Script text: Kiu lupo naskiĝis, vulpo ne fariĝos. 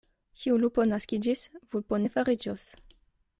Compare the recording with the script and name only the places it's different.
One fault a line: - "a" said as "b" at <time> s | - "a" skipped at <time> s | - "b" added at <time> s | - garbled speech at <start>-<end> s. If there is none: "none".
none